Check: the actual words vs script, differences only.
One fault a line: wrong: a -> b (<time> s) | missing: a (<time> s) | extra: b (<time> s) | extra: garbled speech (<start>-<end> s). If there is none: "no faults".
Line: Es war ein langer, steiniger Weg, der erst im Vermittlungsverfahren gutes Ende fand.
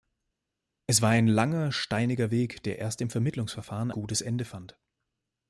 no faults